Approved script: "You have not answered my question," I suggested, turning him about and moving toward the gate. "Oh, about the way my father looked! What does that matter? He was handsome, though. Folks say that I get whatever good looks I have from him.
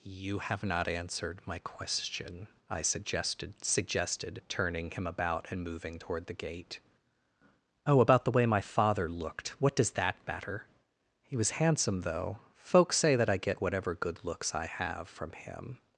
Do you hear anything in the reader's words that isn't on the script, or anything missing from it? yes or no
yes